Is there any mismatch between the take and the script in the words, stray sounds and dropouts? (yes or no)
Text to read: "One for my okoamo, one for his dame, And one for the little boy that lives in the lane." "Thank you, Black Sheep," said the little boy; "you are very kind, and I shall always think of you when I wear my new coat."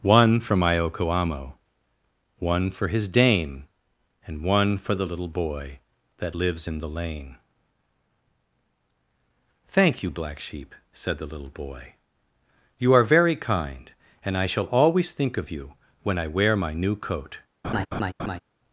yes